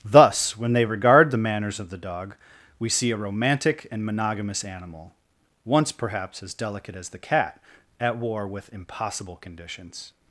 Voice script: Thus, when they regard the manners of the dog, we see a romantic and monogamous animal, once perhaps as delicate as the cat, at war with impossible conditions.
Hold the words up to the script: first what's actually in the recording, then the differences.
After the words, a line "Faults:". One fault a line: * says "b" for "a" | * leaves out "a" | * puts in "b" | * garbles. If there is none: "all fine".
Thus, when they regard the manners of the dog, we see a romantic and monogamous animal, once perhaps as delicate as the cat, at war with impossible conditions.
Faults:
all fine